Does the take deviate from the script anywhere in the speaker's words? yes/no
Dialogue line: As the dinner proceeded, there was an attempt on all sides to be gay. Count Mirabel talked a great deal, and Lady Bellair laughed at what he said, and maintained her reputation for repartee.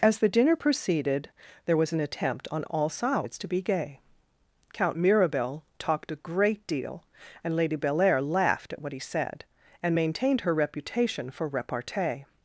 no